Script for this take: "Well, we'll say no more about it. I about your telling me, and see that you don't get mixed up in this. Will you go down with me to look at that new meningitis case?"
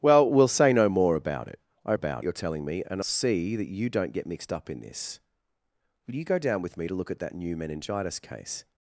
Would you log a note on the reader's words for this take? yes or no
no